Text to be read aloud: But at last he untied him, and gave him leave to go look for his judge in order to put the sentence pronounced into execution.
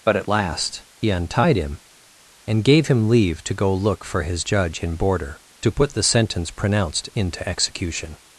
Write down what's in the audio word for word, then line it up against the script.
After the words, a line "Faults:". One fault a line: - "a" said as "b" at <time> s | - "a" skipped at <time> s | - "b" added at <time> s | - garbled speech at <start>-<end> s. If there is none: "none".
But at last he untied him, and gave him leave to go look for his judge in border to put the sentence pronounced into execution.
Faults:
- "order" said as "border" at 5.0 s